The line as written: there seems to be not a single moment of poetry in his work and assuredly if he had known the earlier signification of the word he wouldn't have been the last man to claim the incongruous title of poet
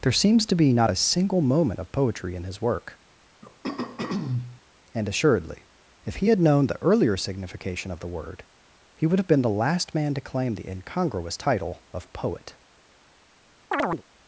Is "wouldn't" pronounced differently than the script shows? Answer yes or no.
yes